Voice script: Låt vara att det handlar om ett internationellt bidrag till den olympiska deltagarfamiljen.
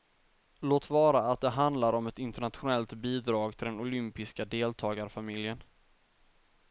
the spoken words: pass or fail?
pass